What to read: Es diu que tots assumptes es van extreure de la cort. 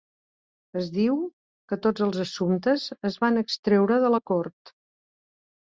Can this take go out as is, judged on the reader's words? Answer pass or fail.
fail